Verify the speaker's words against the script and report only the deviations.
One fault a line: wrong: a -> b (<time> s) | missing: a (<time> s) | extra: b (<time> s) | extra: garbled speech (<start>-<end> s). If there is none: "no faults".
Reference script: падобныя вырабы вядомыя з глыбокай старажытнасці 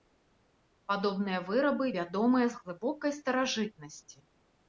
no faults